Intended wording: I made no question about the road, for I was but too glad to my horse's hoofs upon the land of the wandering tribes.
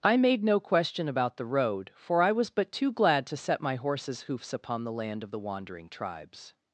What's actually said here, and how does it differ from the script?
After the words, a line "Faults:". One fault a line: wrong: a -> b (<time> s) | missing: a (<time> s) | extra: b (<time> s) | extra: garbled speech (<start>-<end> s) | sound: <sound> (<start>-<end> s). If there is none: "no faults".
I made no question about the road, for I was but too glad to set my horse's hoofs upon the land of the wandering tribes.
Faults:
extra: set (3.4 s)